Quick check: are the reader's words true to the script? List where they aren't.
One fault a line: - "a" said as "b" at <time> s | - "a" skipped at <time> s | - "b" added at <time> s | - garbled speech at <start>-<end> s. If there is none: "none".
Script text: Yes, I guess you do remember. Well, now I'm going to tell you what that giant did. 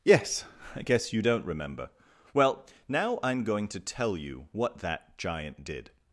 - "do" said as "don't" at 1.2 s